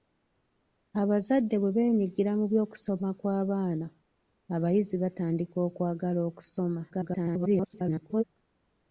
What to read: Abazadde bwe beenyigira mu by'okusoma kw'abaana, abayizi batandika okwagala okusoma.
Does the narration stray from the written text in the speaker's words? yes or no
yes